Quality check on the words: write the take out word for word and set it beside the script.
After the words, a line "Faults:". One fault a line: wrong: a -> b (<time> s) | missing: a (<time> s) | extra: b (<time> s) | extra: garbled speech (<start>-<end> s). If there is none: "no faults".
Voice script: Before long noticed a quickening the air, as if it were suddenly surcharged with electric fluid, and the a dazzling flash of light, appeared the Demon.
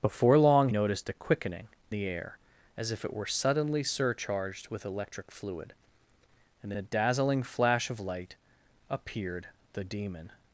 Before long noticed a quickening the air, as if it were suddenly surcharged with electric fluid, and the a dazzling flash of light, appeared the Demon.
Faults:
no faults